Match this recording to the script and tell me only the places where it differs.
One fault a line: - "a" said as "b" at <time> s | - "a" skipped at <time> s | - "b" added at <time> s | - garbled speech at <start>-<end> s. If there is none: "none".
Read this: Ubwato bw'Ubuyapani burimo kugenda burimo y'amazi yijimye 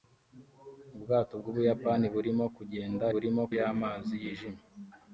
none